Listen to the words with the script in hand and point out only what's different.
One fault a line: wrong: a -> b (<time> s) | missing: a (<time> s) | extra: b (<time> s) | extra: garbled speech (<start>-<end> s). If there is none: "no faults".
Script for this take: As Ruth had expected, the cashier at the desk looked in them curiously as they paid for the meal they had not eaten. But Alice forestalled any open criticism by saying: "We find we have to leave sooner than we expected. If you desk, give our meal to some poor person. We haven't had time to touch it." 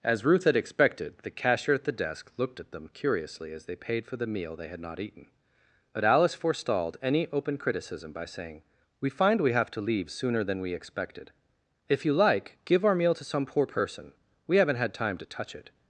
wrong: in -> at (2.6 s)
wrong: desk -> like (12.1 s)